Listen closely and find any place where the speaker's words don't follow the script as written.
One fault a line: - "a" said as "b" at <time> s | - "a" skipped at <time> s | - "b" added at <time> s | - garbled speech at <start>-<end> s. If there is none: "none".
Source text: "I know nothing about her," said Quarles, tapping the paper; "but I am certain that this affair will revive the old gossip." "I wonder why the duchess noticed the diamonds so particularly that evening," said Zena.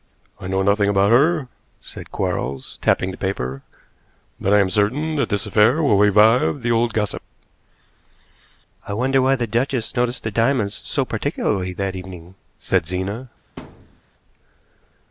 none